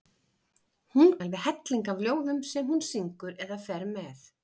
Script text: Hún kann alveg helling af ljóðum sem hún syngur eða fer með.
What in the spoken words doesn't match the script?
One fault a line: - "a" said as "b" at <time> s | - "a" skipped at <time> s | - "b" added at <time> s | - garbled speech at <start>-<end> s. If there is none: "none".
- "kann" skipped at 1.1 s